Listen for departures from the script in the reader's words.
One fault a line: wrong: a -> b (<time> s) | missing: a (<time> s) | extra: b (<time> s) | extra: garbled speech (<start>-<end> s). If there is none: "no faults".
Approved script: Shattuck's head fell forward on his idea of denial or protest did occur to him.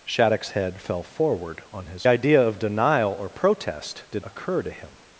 no faults